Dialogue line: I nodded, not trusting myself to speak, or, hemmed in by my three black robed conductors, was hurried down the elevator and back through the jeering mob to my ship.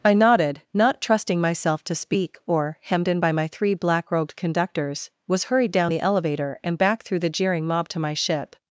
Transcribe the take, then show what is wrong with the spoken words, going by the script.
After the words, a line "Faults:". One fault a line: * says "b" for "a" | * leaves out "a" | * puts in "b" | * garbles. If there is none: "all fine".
I nodded, not trusting myself to speak, or, hemmed in by my three black robed conductors, was hurried down the elevator and back through the jeering mob to my ship.
Faults:
all fine